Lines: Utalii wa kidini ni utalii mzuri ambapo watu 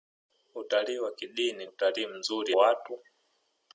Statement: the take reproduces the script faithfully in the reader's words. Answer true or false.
false